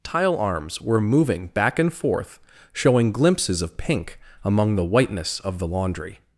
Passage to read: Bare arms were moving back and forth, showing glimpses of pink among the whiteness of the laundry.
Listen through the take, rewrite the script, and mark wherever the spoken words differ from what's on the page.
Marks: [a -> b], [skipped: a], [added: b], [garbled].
[Bare -> Tile] arms were moving back and forth, showing glimpses of pink among the whiteness of the laundry.